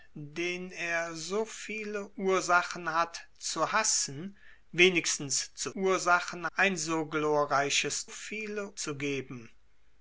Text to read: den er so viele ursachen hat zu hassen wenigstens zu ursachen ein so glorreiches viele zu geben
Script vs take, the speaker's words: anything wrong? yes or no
no